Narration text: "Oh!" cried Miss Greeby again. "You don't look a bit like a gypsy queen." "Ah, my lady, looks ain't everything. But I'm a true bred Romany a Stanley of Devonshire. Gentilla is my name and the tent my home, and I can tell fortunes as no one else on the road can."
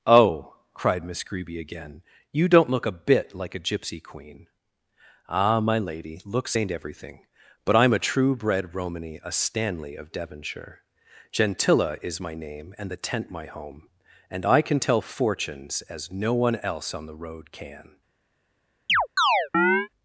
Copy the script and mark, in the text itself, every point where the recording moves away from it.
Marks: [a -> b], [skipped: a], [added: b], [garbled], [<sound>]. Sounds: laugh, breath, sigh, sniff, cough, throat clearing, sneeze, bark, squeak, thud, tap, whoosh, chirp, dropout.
"Oh!" cried Miss Greeby again. "You don't look a bit like a gypsy queen." "Ah, my lady, looks ain't everything. But I'm a true bred Romany a Stanley of Devonshire. Gentilla is my name and the tent my home, and I can tell fortunes as no one else on the road can." [chirp]